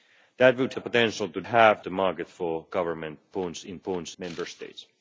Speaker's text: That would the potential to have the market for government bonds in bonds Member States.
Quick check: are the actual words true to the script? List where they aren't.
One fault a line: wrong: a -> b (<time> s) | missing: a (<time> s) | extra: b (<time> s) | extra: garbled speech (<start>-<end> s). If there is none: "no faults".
no faults